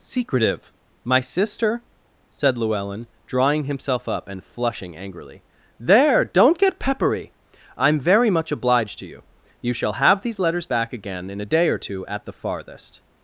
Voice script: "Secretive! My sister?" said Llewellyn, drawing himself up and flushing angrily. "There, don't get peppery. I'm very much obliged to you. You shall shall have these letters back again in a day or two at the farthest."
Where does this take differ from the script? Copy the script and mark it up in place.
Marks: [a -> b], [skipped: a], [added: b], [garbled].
"Secretive! My sister?" said Llewellyn, drawing himself up and flushing angrily. "There, don't get peppery. I'm very much obliged to you. You shall [skipped: shall] have these letters back again in a day or two at the farthest."